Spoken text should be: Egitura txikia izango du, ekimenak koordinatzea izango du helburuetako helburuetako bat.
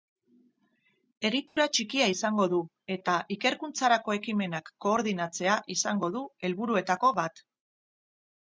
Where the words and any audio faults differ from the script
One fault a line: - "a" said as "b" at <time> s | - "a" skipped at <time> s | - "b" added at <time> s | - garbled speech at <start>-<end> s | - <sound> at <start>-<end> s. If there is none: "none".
- dropout at 1.5-1.6 s
- "eta ikerkuntzarako" added at 3.0 s
- "helburuetako" skipped at 7.1 s